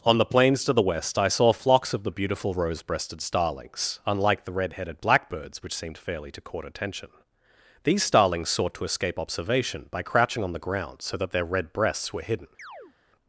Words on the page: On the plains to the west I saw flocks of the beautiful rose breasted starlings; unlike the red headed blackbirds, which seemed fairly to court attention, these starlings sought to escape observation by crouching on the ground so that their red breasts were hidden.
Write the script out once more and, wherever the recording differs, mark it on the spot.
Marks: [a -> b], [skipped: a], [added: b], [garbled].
On the plains to the west I saw flocks of the beautiful rose breasted starlings; unlike the red headed blackbirds, which seemed fairly to court attention, these starlings sought to escape observation by crouching on the ground so that their red breasts were hidden.